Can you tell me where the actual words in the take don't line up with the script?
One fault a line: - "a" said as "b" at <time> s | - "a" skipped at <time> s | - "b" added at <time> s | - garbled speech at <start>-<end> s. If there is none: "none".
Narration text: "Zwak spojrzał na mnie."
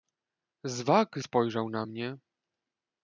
none